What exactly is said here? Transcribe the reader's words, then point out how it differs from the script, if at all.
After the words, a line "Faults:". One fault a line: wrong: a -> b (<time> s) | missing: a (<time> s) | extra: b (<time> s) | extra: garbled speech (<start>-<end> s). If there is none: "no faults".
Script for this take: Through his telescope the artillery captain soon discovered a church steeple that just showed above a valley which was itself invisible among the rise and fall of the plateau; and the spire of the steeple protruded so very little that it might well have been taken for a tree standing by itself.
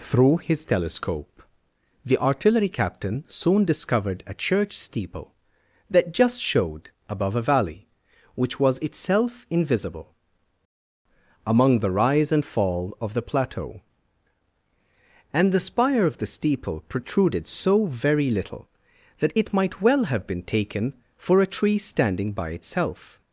Through his telescope the artillery captain soon discovered a church steeple that just showed above a valley which was itself invisible among the rise and fall of the plateau; and the spire of the steeple protruded so very little that it might well have been taken for a tree standing by itself.
Faults:
no faults